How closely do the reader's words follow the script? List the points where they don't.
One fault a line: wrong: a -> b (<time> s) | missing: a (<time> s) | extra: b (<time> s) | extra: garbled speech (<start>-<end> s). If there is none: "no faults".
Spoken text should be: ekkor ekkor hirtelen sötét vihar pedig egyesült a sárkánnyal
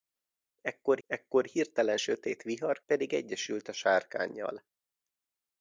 no faults